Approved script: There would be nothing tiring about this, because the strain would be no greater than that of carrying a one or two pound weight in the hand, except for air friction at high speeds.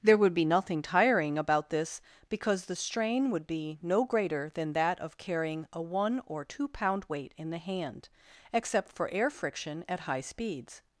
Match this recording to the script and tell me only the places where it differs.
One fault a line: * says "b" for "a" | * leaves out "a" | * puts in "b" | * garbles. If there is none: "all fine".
all fine